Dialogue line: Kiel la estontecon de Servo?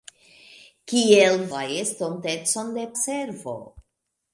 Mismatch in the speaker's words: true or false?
false